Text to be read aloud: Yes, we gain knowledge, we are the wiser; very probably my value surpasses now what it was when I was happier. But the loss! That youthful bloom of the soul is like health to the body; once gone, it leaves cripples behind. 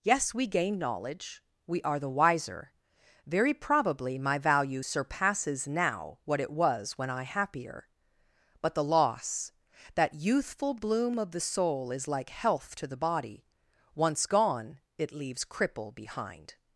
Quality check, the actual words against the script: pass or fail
fail